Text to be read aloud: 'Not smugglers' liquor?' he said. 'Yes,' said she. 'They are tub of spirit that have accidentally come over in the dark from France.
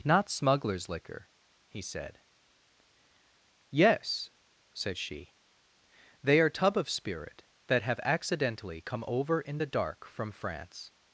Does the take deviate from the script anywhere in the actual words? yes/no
no